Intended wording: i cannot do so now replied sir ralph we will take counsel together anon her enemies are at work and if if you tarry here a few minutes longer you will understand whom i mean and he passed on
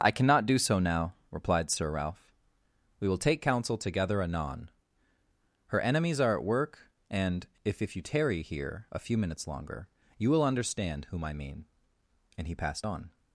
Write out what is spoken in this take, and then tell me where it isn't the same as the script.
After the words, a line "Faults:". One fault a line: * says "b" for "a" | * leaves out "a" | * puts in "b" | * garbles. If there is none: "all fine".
i cannot do so now replied sir ralph we will take counsel together anon her enemies are at work and if if you tarry here a few minutes longer you will understand whom i mean and he passed on
Faults:
all fine